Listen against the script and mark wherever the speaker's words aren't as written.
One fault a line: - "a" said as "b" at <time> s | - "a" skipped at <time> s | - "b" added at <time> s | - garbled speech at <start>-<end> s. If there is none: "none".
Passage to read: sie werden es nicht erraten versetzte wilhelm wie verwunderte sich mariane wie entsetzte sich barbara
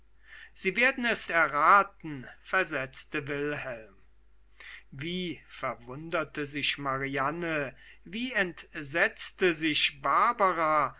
- "nicht" skipped at 1.3 s